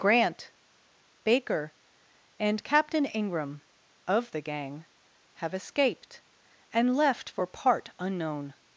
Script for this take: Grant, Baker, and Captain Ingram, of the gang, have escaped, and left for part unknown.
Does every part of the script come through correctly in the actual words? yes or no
yes